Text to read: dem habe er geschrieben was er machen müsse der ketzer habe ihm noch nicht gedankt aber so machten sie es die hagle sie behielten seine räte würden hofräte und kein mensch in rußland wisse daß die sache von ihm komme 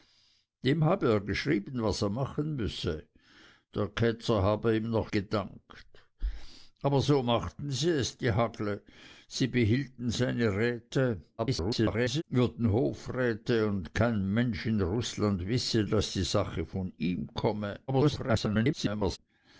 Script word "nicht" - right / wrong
wrong